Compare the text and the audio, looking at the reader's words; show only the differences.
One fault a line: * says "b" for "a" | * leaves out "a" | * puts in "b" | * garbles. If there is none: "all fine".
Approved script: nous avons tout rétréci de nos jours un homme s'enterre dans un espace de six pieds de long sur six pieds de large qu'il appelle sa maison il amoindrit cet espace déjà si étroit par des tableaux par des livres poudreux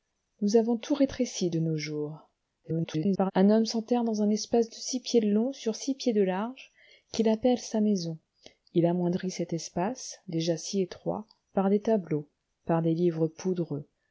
* garbles